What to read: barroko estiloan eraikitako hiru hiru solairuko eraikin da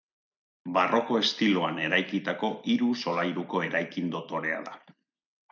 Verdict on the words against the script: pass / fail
fail